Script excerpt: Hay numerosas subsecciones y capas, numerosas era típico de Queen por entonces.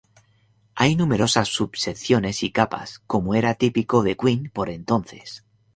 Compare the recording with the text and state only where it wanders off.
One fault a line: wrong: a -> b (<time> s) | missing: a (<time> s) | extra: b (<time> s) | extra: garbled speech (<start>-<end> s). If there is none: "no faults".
wrong: numerosas -> como (3.0 s)